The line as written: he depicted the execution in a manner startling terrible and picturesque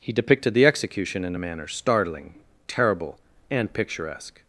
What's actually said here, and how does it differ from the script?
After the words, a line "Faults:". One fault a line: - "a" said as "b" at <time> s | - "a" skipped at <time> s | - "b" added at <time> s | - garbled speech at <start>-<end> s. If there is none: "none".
he depicted the execution in a manner startling terrible and picturesque
Faults:
none